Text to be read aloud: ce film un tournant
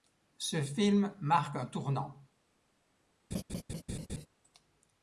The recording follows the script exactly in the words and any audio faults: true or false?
false